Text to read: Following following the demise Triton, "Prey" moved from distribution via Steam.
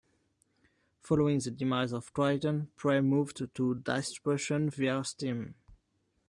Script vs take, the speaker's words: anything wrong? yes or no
yes